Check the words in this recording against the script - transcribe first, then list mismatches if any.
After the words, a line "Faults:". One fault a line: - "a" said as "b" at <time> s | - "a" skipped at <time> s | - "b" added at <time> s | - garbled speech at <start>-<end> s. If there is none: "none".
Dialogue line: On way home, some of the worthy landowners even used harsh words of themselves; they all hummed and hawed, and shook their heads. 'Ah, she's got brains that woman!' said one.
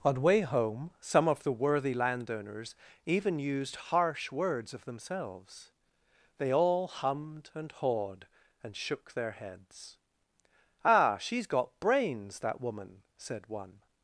On way home, some of the worthy landowners even used harsh words of themselves; they all hummed and hawed, and shook their heads. 'Ah, she's got brains that woman!' said one.
Faults:
none